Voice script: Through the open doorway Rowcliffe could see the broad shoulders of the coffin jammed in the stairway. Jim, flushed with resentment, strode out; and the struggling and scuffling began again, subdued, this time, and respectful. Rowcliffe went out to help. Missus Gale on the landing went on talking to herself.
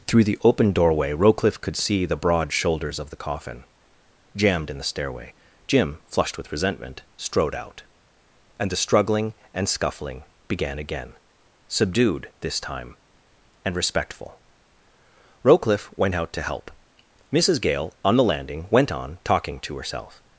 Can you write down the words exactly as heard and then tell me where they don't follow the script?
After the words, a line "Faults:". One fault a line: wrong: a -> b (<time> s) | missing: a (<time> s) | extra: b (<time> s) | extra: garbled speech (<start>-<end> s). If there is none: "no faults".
Through the open doorway Rowcliffe could see the broad shoulders of the coffin jammed in the stairway. Jim, flushed with resentment, strode out; and the struggling and scuffling began again, subdued, this time, and respectful. Rowcliffe went out to help. Missus Gale on the landing went on talking to herself.
Faults:
no faults